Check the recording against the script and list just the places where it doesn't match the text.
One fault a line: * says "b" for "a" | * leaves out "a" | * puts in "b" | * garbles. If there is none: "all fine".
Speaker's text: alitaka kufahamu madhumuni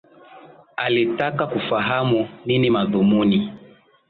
* puts in "nini"